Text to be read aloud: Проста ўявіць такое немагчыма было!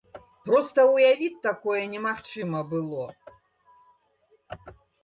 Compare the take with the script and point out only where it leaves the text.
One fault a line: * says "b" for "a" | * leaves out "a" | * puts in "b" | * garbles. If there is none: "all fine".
all fine